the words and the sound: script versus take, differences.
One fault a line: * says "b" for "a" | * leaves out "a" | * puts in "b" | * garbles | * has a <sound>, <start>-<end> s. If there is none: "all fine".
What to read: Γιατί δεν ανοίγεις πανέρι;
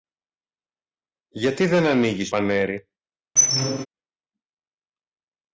* has a squeak, 3.4-3.9 s